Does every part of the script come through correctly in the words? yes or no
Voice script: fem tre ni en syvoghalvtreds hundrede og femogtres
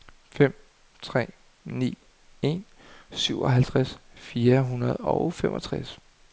no